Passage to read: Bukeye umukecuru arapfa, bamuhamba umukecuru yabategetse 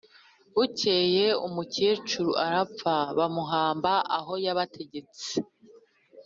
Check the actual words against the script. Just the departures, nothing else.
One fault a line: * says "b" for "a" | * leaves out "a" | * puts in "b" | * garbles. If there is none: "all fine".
* says "aho" for "umukecuru"